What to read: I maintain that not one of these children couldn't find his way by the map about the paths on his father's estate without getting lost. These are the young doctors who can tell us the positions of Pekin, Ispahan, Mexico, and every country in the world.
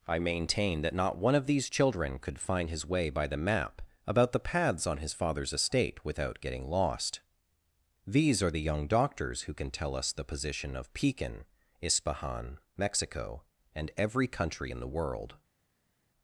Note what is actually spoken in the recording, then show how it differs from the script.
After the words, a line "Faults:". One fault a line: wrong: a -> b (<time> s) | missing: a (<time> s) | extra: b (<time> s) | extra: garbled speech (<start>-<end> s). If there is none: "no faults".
I maintain that not one of these children could find his way by the map about the paths on his father's estate without getting lost. These are the young doctors who can tell us the position of Pekin, Ispahan, Mexico, and every country in the world.
Faults:
wrong: couldn't -> could (2.2 s)
wrong: positions -> position (10.2 s)